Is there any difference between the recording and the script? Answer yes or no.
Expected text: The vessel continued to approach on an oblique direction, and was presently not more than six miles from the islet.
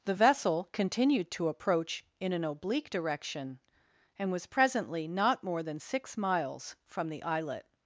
yes